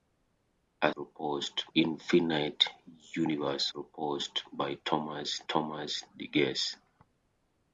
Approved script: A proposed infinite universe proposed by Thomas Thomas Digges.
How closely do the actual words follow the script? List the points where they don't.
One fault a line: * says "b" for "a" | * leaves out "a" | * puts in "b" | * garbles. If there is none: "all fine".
all fine